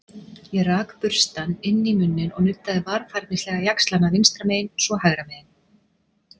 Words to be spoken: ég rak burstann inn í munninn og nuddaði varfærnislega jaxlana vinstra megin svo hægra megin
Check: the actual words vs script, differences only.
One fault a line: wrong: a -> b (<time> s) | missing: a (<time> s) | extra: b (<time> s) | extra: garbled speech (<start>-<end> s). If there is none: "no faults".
no faults